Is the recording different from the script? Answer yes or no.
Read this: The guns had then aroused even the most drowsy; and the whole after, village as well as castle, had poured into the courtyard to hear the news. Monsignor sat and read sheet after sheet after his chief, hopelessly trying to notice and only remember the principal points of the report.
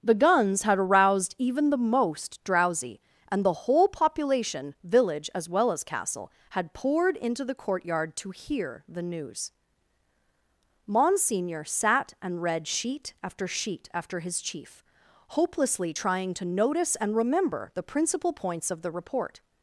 yes